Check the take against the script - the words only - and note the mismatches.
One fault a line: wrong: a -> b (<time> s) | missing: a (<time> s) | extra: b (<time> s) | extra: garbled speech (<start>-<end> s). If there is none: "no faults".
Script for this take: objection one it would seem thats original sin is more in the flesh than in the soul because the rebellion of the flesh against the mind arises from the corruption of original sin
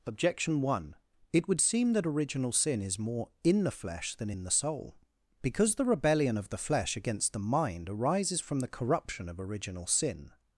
wrong: thats -> that (1.9 s)